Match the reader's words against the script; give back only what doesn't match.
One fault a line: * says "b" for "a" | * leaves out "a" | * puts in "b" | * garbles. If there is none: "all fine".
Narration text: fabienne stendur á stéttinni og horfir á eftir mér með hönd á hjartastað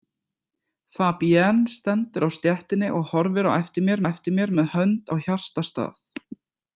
* puts in "eftir mér"